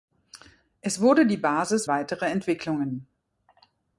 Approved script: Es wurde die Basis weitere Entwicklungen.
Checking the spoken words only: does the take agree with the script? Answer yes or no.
yes